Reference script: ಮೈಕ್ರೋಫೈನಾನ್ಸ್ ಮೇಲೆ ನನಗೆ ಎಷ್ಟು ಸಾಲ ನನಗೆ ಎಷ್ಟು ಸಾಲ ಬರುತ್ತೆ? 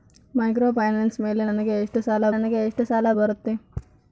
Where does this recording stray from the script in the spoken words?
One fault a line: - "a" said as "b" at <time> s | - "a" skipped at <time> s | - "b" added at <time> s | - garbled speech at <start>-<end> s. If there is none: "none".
none